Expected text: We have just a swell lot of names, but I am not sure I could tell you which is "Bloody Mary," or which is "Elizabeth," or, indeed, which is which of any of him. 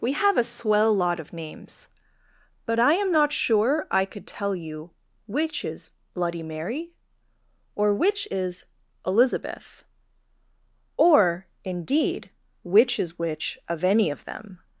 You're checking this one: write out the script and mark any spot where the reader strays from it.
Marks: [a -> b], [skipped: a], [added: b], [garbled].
We have [skipped: just] a swell lot of names, but I am not sure I could tell you which is "Bloody Mary," or which is "Elizabeth," or, indeed, which is which of any of [him. -> them]